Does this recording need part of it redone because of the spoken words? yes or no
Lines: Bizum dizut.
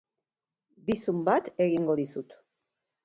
yes